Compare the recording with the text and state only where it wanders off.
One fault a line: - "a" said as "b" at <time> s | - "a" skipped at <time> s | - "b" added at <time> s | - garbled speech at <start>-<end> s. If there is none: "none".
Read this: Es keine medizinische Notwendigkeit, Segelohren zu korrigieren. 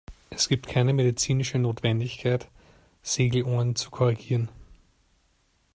- "gibt" added at 0.5 s